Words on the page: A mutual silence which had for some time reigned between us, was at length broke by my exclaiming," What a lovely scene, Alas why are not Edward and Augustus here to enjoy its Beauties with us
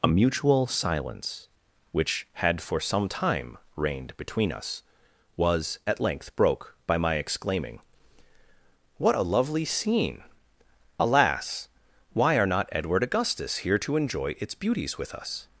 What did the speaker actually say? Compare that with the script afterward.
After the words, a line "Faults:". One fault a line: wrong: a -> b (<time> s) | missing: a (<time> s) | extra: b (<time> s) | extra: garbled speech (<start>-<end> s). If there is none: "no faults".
A mutual silence which had for some time reigned between us, was at length broke by my exclaiming," What a lovely scene, Alas why are not Edward Augustus here to enjoy its Beauties with us
Faults:
missing: and (13.0 s)